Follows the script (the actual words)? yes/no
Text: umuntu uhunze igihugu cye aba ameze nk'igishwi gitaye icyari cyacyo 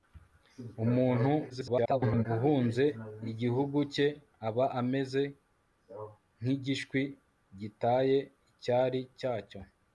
no